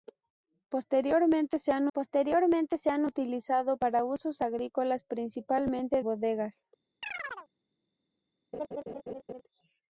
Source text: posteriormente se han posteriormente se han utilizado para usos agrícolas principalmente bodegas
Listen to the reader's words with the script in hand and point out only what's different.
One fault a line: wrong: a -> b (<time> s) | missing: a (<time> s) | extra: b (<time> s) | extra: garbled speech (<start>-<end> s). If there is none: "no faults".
no faults